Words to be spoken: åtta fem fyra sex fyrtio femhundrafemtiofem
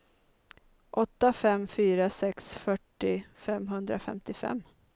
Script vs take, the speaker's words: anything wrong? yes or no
no